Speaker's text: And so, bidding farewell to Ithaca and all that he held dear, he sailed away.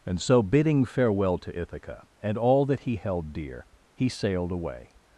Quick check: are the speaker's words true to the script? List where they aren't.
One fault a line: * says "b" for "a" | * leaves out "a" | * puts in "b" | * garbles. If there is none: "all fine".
all fine